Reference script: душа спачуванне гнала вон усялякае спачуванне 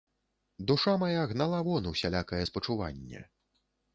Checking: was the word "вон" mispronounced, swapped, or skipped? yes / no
no